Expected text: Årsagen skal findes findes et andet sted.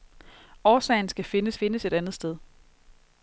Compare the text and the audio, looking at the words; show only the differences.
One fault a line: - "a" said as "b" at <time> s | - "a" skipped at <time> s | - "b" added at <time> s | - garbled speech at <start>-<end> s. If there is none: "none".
none